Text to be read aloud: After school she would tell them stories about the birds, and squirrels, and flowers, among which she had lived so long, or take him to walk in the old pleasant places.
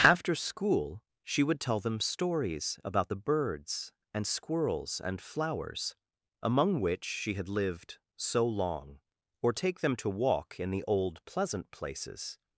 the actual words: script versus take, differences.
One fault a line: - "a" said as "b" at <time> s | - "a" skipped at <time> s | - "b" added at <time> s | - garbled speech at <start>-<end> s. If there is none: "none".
- "him" said as "them" at 9.8 s